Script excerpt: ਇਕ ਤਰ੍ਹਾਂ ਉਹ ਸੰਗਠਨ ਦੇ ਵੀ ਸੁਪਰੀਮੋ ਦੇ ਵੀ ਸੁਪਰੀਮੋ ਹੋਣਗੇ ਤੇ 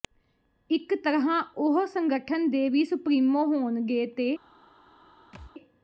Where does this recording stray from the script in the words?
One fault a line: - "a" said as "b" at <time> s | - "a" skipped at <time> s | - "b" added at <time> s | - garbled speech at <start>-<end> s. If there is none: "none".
- "ਦੇ ਵੀ ਸੁਪਰੀਮੋ" skipped at 3.4 s